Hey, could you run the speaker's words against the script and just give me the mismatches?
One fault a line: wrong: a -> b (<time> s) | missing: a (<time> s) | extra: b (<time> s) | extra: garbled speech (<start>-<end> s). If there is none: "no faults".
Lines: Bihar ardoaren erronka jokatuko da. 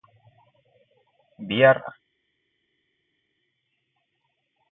missing: ardoaren erronka jokatuko (1.8 s)